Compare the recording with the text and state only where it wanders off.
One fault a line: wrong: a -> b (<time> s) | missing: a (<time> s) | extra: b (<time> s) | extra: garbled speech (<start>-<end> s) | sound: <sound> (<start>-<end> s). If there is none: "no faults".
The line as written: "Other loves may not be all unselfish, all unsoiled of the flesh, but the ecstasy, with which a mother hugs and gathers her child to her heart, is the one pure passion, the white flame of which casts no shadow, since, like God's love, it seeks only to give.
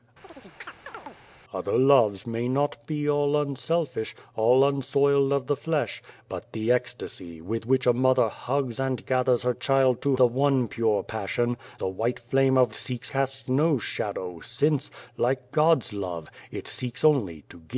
sound: chirp (0.2-1.2 s)
missing: her heart is (10.2 s)
wrong: which -> seeks (12.7 s)